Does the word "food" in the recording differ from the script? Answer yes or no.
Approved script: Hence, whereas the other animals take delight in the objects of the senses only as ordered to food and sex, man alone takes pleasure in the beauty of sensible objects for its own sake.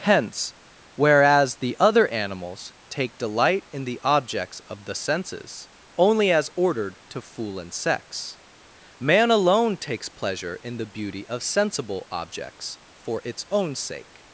yes